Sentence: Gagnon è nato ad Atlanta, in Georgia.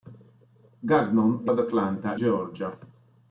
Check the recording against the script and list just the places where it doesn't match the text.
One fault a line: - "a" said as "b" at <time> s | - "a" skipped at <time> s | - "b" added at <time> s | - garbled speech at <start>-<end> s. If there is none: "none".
- "nato" skipped at 1.5 s
- "in" skipped at 2.2 s